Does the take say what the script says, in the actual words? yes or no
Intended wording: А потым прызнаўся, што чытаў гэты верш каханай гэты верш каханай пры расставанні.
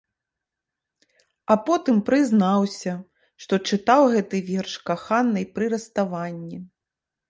no